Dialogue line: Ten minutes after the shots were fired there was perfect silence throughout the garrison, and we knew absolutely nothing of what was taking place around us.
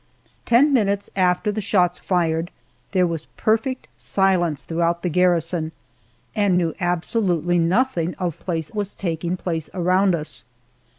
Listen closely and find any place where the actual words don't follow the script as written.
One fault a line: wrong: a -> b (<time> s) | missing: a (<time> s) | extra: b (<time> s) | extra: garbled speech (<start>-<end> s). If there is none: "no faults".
missing: were (2.0 s)
missing: we (6.6 s)
wrong: what -> place (8.4 s)